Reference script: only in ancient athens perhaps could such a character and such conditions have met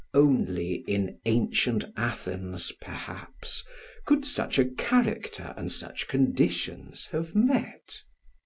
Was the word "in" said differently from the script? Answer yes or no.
no